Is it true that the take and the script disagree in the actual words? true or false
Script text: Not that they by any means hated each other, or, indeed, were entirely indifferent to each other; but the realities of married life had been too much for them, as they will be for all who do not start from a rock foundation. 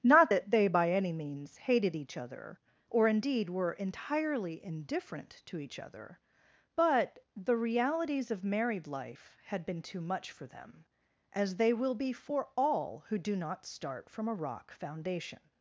false